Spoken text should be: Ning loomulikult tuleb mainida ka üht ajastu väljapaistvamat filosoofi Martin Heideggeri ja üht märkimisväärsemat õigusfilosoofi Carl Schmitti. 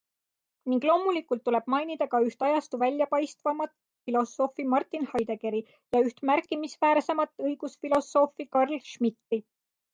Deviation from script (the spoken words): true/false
false